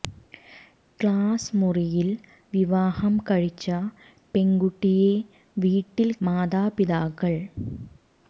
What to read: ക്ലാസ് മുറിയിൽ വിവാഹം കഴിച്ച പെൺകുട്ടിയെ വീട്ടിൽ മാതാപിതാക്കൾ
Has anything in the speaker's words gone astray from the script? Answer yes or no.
no